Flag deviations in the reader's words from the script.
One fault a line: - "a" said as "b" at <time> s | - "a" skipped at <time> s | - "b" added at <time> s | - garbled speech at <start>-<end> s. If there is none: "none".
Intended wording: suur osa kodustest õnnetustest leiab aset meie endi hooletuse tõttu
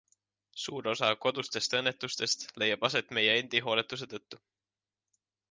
none